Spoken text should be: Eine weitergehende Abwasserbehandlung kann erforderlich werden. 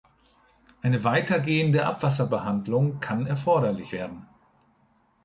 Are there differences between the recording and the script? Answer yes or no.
no